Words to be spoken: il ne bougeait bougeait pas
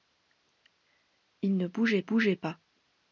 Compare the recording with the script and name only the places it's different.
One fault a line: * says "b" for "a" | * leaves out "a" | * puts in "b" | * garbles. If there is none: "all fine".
all fine